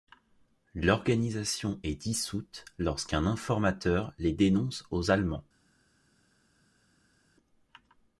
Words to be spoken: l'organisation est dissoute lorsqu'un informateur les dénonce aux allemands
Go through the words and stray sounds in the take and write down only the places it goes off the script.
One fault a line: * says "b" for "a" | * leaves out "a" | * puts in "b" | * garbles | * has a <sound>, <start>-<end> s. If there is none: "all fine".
all fine